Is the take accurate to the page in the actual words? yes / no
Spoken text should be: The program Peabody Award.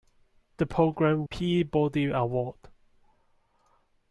yes